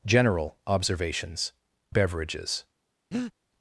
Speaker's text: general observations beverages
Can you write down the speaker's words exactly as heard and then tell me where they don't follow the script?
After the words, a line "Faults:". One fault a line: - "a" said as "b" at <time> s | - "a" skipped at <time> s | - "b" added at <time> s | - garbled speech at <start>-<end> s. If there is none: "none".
general observations beverages
Faults:
none